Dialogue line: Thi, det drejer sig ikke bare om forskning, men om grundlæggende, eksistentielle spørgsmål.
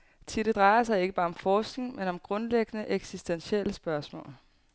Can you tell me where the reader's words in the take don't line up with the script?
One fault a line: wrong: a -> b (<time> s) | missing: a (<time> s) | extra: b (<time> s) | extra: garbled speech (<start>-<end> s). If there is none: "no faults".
no faults